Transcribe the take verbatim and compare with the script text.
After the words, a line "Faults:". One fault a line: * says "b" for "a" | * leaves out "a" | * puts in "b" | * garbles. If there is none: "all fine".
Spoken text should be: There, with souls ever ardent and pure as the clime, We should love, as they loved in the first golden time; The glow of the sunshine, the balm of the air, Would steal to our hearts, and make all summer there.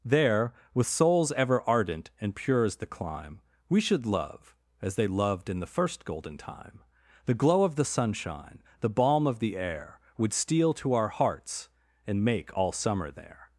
There, with souls ever ardent and pure as the clime, We should love, as they loved in the first golden time; The glow of the sunshine, the balm of the air, Would steal to our hearts, and make all summer there.
Faults:
all fine